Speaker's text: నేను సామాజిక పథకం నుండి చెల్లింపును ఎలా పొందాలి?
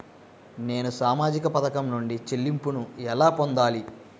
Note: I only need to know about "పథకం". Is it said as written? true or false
true